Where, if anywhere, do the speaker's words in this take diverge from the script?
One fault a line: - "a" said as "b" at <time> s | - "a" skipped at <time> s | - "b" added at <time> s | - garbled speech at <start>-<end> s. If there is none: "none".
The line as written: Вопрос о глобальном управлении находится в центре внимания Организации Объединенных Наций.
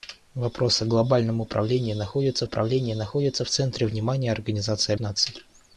- "управлении находится" added at 2.4 s
- "Объединенных" skipped at 4.9 s